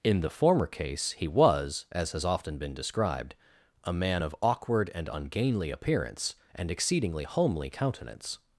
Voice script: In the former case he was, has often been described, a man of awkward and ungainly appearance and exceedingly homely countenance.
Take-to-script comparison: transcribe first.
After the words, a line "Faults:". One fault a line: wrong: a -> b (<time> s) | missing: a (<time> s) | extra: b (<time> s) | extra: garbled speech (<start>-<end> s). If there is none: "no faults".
In the former case he was, as has often been described, a man of awkward and ungainly appearance and exceedingly homely countenance.
Faults:
extra: as (1.9 s)